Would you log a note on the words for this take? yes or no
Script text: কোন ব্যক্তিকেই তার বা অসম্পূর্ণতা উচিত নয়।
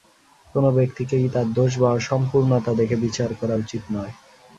yes